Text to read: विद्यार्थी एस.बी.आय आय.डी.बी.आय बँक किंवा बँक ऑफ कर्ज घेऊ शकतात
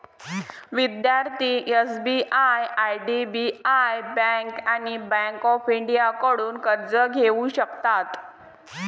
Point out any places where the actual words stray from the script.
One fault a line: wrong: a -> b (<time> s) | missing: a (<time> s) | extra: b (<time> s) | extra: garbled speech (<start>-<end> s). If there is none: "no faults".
wrong: किंवा -> आणि (4.7 s)
extra: इंडियाकडून (5.7 s)